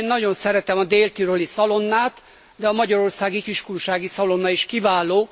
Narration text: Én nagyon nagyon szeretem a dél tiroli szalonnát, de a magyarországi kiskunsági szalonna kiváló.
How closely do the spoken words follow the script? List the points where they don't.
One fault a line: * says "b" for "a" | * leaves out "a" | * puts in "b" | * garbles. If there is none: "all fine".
* leaves out "nagyon"
* puts in "is"